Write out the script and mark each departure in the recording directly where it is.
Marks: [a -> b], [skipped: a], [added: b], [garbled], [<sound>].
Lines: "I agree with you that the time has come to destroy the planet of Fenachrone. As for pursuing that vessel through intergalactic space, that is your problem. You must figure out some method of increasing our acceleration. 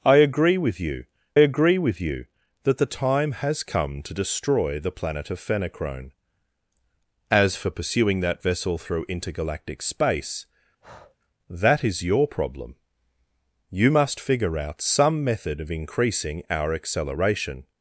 "I agree with you [added: agree with you] that the time has come to destroy the planet of Fenachrone. As for pursuing that vessel through intergalactic space, [breath] that is your problem. You must figure out some method of increasing our acceleration.